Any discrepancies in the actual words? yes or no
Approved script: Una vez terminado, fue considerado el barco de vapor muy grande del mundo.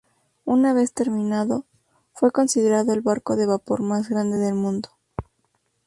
yes